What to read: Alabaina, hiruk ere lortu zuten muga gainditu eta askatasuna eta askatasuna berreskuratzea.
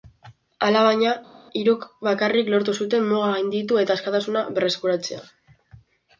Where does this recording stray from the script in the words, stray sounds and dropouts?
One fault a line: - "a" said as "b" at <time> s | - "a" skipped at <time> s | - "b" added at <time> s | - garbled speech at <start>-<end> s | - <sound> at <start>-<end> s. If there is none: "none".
- "ere" said as "bakarrik" at 2.1 s
- "eta askatasuna" skipped at 4.5 s